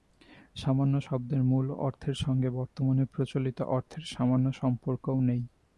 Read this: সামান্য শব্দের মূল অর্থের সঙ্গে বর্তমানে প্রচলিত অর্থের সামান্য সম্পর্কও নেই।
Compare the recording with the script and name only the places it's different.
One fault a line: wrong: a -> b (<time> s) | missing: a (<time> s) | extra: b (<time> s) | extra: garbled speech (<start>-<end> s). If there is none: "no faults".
no faults